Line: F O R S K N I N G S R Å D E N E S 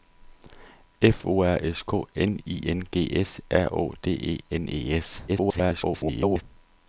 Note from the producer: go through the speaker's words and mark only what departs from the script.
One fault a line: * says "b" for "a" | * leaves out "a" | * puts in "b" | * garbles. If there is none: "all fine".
* garbles